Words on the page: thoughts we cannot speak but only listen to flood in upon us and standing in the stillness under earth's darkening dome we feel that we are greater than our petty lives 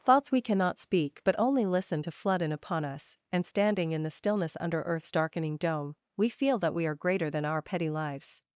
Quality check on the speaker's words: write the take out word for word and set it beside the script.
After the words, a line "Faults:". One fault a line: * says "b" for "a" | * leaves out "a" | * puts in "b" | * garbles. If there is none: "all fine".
thoughts we cannot speak but only listen to flood in upon us and standing in the stillness under earth's darkening dome we feel that we are greater than our petty lives
Faults:
all fine